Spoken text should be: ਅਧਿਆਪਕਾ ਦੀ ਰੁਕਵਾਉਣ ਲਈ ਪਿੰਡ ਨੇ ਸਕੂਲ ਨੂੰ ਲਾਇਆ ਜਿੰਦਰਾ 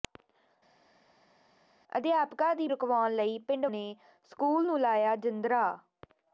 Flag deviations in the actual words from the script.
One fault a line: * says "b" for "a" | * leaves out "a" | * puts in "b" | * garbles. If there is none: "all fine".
all fine